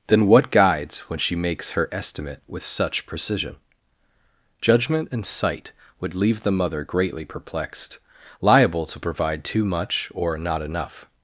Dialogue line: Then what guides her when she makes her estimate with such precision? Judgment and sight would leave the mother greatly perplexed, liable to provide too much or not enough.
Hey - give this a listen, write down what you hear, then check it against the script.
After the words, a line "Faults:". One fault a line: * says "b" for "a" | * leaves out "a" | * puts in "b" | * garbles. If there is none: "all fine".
Then what guides when she makes her estimate with such precision? Judgment and sight would leave the mother greatly perplexed, liable to provide too much or not enough.
Faults:
* leaves out "her"